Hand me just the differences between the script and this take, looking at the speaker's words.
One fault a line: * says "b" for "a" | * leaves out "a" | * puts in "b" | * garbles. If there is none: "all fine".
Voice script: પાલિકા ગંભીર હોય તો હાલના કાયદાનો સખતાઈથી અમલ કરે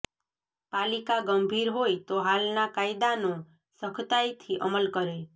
all fine